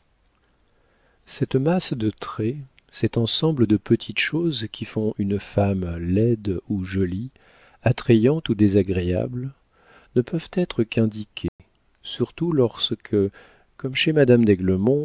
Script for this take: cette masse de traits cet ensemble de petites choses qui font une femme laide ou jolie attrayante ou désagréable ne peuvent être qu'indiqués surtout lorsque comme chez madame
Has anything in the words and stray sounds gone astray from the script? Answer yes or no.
yes